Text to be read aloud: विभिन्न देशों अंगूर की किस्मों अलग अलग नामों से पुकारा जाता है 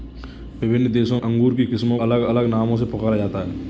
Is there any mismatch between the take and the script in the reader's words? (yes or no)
no